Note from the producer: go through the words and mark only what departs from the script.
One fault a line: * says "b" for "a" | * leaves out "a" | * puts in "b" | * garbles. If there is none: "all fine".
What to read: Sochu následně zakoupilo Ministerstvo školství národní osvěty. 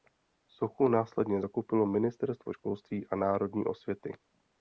* puts in "a"